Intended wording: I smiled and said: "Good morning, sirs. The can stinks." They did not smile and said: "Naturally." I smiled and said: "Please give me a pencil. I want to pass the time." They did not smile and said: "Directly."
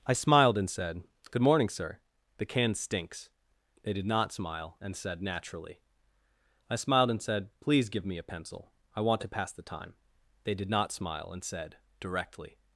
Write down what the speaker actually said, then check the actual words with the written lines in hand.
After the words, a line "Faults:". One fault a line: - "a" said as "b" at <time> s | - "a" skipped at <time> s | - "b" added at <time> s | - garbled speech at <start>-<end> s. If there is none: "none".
I smiled and said: "Good morning, sir. The can stinks." They did not smile and said: "Naturally." I smiled and said: "Please give me a pencil. I want to pass the time." They did not smile and said: "Directly."
Faults:
- "sirs" said as "sir" at 1.7 s